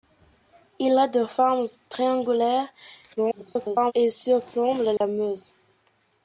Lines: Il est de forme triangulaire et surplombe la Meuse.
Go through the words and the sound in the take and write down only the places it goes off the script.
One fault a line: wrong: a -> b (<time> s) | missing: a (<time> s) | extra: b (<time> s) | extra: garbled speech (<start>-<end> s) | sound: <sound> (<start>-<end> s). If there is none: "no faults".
extra: garbled speech (3.2-3.9 s)
sound: dropout (5.0-5.0 s)